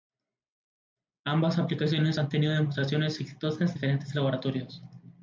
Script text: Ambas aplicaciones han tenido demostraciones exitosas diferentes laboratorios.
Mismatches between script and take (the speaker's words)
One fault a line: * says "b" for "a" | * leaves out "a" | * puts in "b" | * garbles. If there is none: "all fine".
all fine